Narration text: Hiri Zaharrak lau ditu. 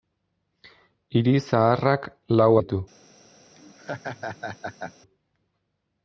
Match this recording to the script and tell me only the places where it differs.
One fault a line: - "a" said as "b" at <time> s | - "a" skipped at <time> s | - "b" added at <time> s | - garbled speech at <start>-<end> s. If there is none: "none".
none